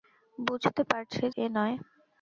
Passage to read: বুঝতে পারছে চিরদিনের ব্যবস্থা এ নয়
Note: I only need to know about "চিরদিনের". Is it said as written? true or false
false